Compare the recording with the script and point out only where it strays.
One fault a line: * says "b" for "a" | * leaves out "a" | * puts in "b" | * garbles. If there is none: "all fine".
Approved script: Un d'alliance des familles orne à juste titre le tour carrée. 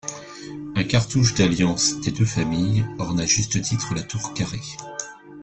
* puts in "cartouche"
* puts in "deux"
* says "la" for "le"